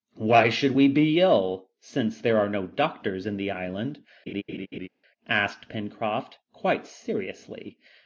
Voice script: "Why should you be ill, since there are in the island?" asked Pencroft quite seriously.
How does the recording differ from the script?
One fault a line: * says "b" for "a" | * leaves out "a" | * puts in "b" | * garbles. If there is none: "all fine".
* says "we" for "you"
* puts in "no doctors"